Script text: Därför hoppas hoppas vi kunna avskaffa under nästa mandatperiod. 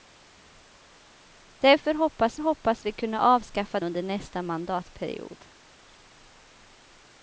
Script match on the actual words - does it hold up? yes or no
yes